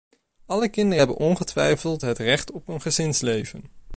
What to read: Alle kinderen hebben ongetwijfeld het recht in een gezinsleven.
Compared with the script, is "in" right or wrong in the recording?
wrong